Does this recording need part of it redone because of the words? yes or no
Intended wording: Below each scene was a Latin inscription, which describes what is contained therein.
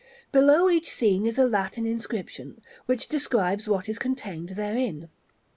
yes